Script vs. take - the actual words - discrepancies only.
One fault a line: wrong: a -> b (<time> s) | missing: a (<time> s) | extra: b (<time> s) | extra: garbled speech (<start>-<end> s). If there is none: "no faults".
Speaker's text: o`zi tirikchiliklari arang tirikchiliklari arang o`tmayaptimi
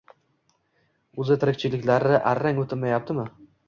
missing: tirikchiliklari arang (2.7 s)